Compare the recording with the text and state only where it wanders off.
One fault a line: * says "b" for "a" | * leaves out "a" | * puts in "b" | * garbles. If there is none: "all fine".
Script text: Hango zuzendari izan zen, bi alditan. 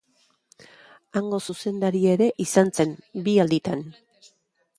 * puts in "ere"